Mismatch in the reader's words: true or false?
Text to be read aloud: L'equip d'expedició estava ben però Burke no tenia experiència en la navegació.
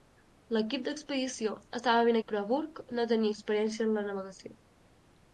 false